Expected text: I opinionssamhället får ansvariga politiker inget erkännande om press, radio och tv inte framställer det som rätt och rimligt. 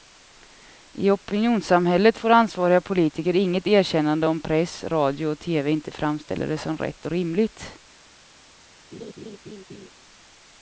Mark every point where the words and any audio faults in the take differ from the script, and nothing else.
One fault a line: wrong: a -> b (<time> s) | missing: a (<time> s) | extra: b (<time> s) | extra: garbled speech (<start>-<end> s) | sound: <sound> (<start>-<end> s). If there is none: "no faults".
sound: laugh (8.9-9.9 s)